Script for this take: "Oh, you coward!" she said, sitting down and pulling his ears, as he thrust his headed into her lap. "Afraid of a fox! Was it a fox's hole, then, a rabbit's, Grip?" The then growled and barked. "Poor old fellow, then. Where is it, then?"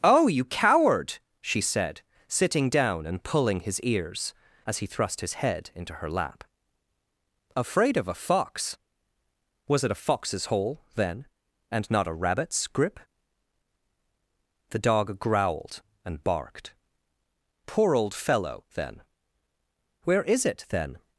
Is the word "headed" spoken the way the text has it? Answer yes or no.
no